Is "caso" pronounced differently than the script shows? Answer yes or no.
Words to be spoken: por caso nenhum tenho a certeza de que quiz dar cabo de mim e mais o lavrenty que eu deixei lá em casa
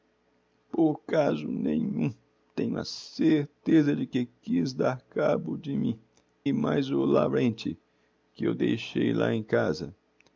no